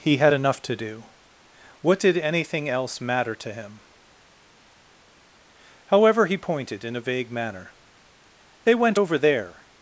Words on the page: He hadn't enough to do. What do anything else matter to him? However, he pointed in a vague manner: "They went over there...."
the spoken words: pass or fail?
fail